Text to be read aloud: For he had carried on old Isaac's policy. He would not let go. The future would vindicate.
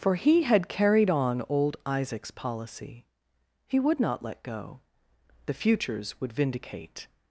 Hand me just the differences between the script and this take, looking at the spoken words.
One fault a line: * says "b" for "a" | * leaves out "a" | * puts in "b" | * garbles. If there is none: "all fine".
* says "futures" for "future"